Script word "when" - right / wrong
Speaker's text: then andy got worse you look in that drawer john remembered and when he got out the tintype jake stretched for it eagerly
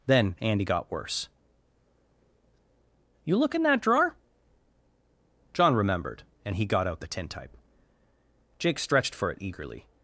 wrong